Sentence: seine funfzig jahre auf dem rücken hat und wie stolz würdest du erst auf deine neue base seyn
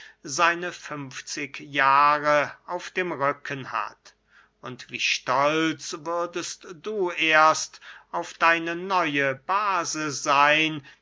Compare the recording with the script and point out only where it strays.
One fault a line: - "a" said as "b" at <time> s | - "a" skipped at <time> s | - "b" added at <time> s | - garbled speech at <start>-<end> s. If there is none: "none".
none